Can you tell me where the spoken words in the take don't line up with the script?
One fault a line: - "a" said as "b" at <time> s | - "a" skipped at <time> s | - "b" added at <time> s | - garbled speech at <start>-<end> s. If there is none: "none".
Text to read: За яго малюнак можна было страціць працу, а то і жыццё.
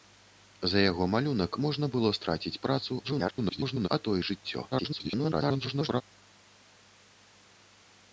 - garbled speech at 3.0-3.9 s
- garbled speech at 4.7-6.0 s